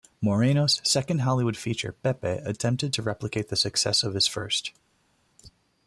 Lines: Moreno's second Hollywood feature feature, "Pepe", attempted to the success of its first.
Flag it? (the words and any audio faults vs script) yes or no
yes